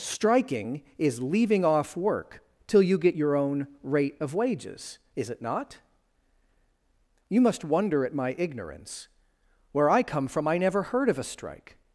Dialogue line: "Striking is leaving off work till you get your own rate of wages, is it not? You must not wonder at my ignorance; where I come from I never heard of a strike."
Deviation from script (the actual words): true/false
true